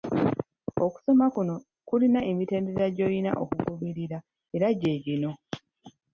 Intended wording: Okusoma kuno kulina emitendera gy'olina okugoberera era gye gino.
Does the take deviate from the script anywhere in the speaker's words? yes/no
no